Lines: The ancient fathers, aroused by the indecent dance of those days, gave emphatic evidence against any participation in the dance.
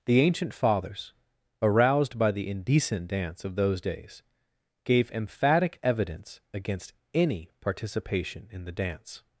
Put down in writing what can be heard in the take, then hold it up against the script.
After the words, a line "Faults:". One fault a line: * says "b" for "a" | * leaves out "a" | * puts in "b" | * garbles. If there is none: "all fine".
The ancient fathers, aroused by the indecent dance of those days, gave emphatic evidence against any participation in the dance.
Faults:
all fine